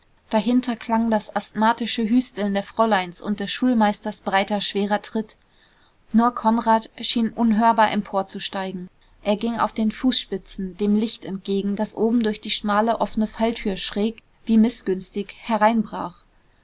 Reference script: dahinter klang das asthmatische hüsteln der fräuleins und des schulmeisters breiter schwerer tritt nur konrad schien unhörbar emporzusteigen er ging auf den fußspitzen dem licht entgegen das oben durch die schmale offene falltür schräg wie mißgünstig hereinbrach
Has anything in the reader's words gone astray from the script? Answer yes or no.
no